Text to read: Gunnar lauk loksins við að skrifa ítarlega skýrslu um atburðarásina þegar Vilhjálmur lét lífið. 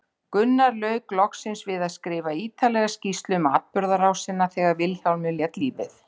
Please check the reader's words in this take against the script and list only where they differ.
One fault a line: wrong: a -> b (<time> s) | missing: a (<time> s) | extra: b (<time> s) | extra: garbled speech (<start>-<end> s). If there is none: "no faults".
no faults